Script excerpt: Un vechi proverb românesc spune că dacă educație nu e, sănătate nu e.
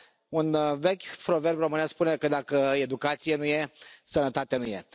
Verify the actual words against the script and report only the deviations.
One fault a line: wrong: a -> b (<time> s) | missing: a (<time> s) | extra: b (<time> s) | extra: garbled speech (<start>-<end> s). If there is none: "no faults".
no faults